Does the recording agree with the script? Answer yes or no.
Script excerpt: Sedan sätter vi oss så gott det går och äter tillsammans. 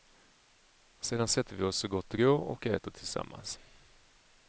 yes